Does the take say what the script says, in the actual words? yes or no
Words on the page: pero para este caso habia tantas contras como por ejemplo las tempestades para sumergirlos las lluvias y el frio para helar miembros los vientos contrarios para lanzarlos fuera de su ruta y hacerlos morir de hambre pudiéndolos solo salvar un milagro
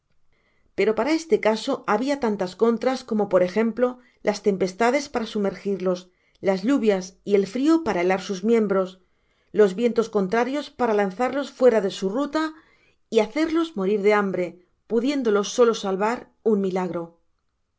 no